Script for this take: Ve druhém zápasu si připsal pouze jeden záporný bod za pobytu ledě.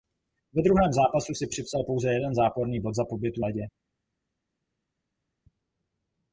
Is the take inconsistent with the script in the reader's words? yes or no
no